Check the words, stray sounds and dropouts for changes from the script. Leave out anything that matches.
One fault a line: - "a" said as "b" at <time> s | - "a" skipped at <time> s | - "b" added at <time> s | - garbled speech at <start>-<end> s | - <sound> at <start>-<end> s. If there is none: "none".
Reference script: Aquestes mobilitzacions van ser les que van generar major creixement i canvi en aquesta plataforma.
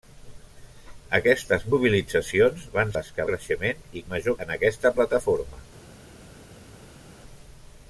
- "ser" skipped at 2.9 s
- "van generar major" skipped at 3.3 s
- "canvi" said as "major" at 4.1 s